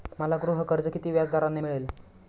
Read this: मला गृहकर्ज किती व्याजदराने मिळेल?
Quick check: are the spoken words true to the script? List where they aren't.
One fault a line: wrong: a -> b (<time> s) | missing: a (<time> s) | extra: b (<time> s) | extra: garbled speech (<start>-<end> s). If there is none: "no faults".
no faults